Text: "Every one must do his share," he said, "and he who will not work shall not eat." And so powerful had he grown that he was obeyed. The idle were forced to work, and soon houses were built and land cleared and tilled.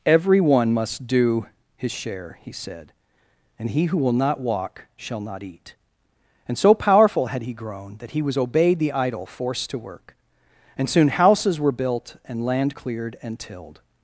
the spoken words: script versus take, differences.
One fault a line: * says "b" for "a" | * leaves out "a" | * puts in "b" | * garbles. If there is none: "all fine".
* says "walk" for "work"
* leaves out "were"